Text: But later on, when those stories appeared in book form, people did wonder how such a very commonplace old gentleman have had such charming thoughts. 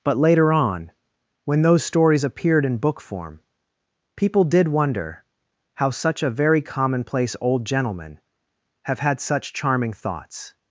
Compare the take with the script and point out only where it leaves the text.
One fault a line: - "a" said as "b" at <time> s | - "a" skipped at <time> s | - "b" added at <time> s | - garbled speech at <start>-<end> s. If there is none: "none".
none